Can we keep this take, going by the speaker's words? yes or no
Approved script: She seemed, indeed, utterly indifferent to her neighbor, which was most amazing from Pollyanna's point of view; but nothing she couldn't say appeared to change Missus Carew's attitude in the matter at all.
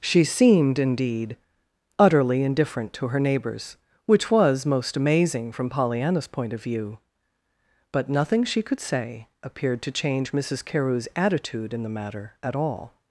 no